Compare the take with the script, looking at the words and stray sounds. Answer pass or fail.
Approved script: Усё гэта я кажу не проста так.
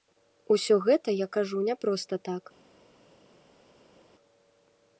pass